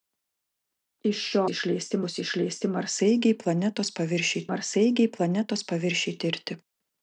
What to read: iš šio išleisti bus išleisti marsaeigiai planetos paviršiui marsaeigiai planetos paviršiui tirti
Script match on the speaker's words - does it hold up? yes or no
yes